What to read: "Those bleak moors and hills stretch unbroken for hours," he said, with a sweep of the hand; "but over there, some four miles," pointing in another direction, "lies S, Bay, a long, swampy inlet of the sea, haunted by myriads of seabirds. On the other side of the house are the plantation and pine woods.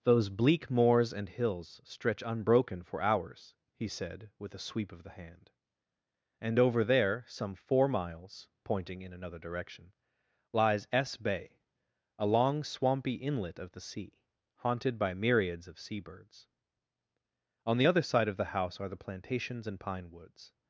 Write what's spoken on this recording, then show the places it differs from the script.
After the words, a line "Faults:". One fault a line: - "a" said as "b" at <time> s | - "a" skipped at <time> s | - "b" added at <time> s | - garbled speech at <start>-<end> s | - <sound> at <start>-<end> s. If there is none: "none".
"Those bleak moors and hills stretch unbroken for hours," he said, with a sweep of the hand; "and over there, some four miles," pointing in another direction, "lies S, Bay, a long, swampy inlet of the sea, haunted by myriads of seabirds. On the other side of the house are the plantations and pine woods.
Faults:
- "but" said as "and" at 6.4 s
- "plantation" said as "plantations" at 19.0 s